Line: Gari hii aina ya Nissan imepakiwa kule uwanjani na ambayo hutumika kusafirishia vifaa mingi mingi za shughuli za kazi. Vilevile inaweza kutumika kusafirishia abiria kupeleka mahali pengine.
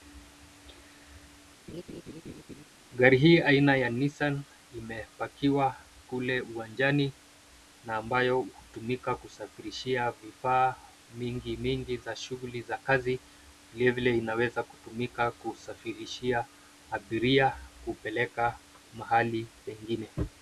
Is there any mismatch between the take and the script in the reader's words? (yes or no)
no